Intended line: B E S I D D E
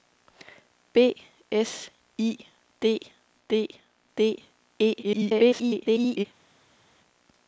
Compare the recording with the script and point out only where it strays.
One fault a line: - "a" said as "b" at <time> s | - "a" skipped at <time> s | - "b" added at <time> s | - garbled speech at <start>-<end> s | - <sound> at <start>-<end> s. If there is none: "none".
- "E" skipped at 1.1 s
- "D" added at 4.2 s
- garbled speech at 5.0-6.2 s